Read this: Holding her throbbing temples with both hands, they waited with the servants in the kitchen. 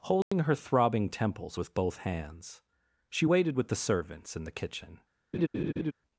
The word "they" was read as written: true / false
false